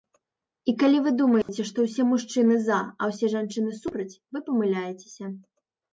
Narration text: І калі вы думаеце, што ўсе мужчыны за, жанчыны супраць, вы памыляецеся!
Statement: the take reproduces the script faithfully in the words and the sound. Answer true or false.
false